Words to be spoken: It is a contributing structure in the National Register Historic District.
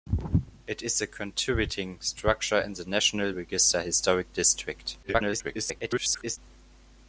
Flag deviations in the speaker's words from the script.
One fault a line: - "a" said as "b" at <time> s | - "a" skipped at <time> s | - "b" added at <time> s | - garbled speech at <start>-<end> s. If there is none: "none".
- garbled speech at 5.0-6.4 s